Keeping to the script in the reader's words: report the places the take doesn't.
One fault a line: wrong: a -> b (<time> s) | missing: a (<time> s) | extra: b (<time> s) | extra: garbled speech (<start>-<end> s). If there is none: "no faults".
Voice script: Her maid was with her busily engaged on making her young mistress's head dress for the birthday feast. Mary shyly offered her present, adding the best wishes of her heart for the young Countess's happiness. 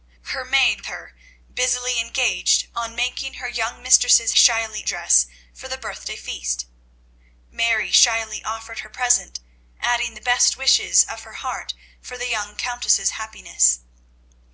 missing: was with (0.8 s)
wrong: head -> shyly (4.3 s)